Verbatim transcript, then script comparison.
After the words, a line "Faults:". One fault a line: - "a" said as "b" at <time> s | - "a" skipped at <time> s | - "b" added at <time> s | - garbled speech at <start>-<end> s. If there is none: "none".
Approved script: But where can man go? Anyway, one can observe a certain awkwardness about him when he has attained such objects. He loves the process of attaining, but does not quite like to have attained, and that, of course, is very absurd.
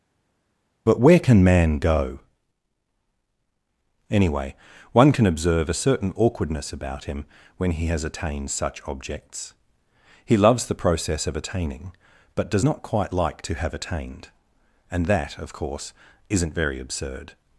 But where can man go? Anyway, one can observe a certain awkwardness about him when he has attained such objects. He loves the process of attaining, but does not quite like to have attained, and that, of course, isn't very absurd.
Faults:
- "is" said as "isn't" at 16.3 s